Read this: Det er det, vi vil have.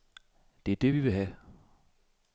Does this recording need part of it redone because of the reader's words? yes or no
no